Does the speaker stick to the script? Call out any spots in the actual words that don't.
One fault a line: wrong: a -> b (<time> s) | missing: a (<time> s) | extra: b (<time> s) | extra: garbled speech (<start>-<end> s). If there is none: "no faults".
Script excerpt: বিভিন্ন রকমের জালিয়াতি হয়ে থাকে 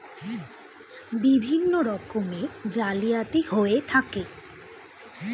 no faults